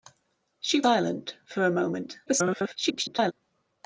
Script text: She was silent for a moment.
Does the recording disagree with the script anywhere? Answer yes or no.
yes